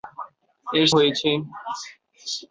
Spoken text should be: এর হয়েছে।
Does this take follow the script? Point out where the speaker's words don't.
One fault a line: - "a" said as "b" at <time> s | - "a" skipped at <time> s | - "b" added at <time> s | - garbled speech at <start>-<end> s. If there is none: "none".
none